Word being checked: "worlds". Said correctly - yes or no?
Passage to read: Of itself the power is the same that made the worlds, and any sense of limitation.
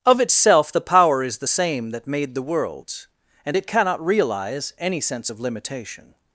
yes